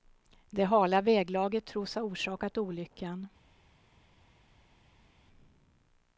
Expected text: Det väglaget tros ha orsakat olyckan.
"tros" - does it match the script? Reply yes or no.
yes